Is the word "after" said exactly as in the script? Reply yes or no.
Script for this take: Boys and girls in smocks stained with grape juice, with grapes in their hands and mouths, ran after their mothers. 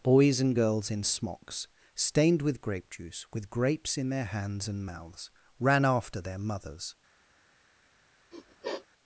yes